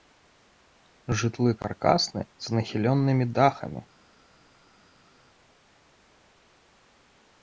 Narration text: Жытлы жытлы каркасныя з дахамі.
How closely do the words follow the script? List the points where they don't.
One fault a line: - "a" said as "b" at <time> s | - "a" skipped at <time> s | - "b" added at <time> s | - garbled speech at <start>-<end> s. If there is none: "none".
- "жытлы" skipped at 1.5 s
- "нахіленымі" added at 2.6 s